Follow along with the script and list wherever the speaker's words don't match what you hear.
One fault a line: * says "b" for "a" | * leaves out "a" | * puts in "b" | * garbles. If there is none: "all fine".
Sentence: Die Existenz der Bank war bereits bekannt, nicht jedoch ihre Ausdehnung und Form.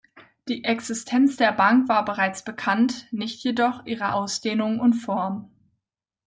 all fine